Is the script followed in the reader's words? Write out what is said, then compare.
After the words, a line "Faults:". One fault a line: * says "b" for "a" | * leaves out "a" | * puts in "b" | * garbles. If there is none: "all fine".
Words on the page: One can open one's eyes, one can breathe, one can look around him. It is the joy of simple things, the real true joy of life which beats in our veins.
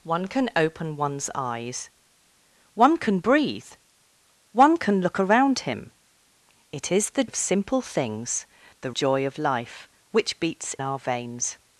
One can open one's eyes, one can breathe, one can look around him. It is the of simple things, the joy of life which beats our veins.
Faults:
* leaves out "joy"
* leaves out "real true"
* leaves out "in"